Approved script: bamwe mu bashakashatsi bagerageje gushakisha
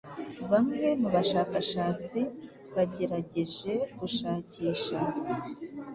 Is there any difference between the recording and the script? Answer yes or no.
no